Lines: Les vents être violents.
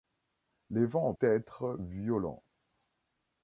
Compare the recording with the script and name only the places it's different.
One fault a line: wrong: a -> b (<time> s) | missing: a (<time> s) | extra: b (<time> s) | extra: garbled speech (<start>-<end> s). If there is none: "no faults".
no faults